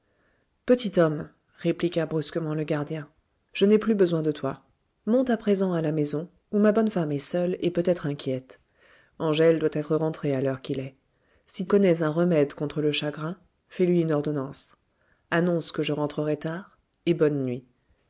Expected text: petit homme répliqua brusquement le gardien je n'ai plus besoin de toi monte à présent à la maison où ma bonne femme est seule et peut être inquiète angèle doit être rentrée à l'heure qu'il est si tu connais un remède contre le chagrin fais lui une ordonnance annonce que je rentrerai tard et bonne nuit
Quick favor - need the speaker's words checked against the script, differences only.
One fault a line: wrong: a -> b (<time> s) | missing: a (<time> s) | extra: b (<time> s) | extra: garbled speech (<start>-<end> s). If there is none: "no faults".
missing: tu (11.7 s)